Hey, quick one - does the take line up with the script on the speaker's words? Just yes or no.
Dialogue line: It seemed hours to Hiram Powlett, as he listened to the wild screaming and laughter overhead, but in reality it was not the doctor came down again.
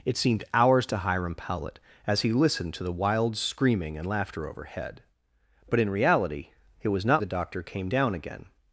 yes